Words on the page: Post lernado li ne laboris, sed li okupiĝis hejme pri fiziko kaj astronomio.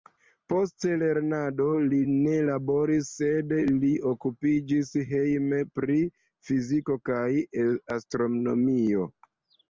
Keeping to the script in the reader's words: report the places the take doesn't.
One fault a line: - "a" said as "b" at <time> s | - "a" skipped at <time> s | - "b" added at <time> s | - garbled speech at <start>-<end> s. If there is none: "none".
none